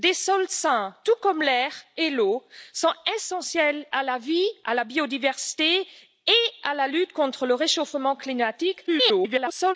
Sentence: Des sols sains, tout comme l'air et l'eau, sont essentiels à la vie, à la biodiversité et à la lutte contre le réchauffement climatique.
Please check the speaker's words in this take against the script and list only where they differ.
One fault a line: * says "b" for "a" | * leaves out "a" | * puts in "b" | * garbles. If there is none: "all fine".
* garbles